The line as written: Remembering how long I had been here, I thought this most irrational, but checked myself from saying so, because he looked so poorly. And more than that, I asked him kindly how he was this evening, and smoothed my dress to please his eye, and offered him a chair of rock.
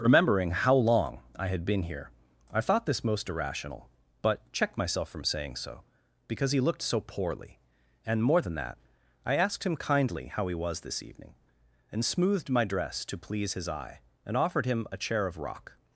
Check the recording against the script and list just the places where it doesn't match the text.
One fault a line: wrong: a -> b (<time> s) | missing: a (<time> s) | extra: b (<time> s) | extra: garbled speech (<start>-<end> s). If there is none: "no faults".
no faults